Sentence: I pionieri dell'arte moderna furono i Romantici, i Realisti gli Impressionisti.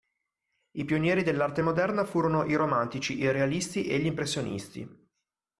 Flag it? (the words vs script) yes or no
yes